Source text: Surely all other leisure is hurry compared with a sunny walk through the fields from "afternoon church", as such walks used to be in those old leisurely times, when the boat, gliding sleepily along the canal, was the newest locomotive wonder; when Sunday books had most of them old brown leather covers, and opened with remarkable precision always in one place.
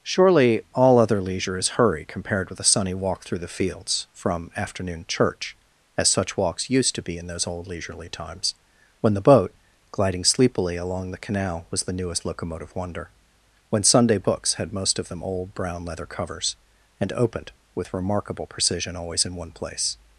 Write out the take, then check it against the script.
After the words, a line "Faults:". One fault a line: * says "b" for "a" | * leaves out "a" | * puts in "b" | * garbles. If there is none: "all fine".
Surely all other leisure is hurry compared with a sunny walk through the fields from "afternoon church", as such walks used to be in those old leisurely times, when the boat, gliding sleepily along the canal, was the newest locomotive wonder; when Sunday books had most of them old brown leather covers, and opened with remarkable precision always in one place.
Faults:
all fine